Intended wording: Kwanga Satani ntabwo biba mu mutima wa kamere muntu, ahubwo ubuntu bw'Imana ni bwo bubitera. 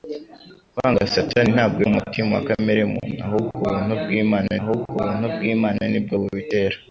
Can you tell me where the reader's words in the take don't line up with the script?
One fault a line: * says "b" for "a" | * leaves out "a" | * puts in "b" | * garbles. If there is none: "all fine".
* leaves out "biba"
* puts in "ahubwo ubuntu bw'Imana"